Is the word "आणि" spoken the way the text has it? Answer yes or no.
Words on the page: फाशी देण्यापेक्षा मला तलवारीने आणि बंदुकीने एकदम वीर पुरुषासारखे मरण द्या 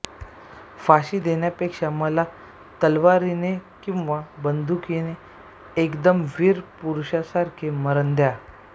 no